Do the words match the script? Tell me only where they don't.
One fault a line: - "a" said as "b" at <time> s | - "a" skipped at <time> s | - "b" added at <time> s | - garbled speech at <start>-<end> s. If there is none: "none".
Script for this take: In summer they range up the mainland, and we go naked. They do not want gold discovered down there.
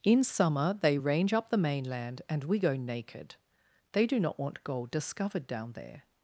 none